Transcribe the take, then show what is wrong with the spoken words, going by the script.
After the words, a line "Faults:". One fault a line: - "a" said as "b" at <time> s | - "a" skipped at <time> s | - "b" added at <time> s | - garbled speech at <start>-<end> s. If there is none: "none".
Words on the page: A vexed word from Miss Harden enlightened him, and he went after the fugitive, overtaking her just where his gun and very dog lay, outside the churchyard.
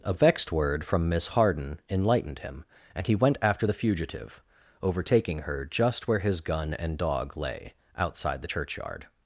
A vexed word from Miss Harden enlightened him, and he went after the fugitive, overtaking her just where his gun and dog lay, outside the churchyard.
Faults:
- "very" skipped at 7.0 s